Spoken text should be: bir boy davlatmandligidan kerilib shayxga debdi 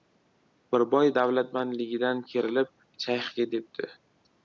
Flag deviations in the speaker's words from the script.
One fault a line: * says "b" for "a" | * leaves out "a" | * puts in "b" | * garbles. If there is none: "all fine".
all fine